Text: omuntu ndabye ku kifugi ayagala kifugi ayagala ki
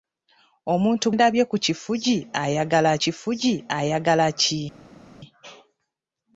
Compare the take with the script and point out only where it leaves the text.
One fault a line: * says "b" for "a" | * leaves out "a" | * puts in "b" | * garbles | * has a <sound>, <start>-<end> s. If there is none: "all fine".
all fine